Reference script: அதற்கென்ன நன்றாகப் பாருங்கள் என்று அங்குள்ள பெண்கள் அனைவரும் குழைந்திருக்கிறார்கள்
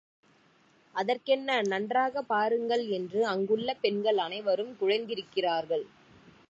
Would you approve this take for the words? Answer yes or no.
yes